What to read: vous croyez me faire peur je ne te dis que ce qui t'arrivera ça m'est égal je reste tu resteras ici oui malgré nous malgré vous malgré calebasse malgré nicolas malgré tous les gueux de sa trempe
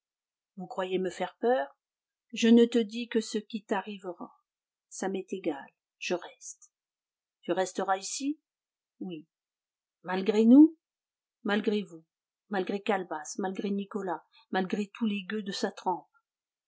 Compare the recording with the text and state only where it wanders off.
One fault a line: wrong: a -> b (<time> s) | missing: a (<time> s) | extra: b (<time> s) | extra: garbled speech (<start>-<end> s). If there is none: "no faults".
no faults